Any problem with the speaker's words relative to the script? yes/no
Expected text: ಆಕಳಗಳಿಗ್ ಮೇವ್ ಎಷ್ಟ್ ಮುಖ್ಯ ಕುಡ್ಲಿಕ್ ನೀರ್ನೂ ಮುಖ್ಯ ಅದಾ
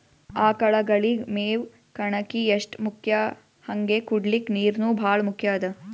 yes